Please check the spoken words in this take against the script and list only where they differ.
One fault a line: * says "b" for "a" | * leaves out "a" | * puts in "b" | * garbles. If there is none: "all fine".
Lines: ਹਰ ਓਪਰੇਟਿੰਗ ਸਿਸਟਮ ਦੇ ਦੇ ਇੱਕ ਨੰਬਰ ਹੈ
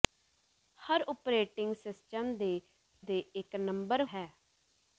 all fine